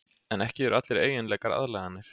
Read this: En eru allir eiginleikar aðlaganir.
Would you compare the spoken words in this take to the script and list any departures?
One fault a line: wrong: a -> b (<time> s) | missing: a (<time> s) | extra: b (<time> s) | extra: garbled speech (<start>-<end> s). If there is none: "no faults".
extra: ekki (0.4 s)